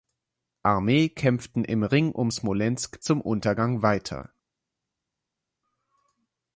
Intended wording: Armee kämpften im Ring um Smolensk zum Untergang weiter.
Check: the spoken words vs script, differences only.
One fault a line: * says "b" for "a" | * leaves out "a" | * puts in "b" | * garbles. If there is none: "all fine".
all fine